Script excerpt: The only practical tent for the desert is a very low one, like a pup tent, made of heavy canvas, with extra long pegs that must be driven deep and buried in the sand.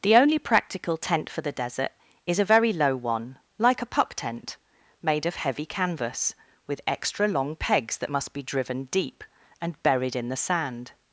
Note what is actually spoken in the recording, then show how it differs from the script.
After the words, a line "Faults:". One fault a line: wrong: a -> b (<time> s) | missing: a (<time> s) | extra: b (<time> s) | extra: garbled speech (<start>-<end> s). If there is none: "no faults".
The only practical tent for the desert is a very low one, like a pup tent, made of heavy canvas, with extra long pegs that must be driven deep and buried in the sand.
Faults:
no faults